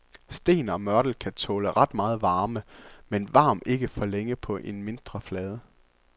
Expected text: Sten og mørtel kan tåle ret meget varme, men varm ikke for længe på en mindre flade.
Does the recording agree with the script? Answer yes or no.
yes